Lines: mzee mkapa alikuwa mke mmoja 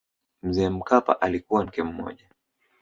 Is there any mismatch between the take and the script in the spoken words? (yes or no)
no